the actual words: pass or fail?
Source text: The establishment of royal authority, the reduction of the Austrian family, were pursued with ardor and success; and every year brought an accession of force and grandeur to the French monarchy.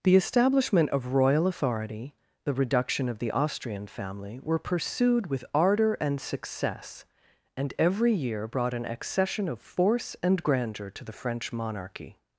pass